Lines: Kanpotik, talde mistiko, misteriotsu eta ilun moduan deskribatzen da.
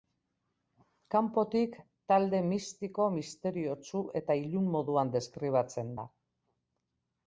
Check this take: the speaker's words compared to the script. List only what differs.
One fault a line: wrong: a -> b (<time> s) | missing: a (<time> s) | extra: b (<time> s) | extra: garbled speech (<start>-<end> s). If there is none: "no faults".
no faults